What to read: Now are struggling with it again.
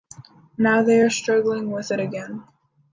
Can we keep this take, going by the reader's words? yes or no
no